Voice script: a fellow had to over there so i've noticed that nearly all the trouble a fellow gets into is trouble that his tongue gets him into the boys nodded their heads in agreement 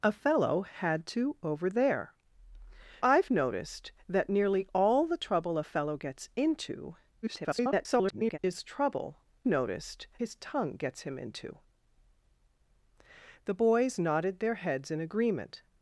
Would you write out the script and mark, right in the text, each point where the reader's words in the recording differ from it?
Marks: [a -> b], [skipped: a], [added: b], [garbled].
a fellow had to over there [skipped: so] i've noticed that nearly all the trouble a fellow gets into [garbled] is trouble [that -> noticed] his tongue gets him into the boys nodded their heads in agreement